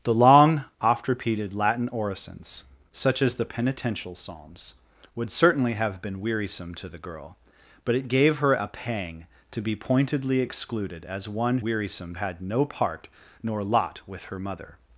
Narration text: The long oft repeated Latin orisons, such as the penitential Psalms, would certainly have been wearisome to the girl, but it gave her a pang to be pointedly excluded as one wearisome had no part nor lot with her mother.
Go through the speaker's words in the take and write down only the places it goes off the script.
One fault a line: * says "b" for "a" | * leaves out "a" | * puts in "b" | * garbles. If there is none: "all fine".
all fine